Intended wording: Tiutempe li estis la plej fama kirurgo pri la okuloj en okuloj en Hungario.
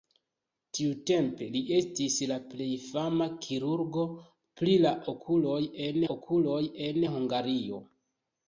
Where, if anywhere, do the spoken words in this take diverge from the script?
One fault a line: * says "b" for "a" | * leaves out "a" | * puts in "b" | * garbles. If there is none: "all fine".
all fine